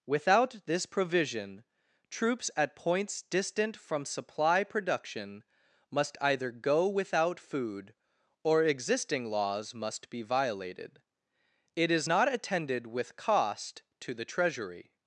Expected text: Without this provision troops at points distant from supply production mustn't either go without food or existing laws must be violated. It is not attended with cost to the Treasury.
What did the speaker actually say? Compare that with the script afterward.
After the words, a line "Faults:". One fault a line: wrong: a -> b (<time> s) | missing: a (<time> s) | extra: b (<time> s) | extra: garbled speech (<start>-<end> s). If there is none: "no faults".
Without this provision troops at points distant from supply production must either go without food or existing laws must be violated. It is not attended with cost to the Treasury.
Faults:
wrong: mustn't -> must (5.9 s)